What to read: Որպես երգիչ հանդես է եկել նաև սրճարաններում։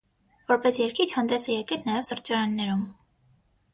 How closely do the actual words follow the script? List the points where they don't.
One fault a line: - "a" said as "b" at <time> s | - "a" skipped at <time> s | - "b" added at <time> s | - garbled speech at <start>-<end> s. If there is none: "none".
none